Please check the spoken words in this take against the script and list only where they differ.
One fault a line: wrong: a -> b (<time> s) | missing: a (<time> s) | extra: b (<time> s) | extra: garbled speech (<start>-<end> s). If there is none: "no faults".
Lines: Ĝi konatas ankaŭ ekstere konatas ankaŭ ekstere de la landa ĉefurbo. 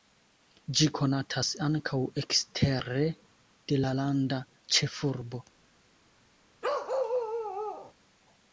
missing: konatas ankaŭ ekstere (3.0 s)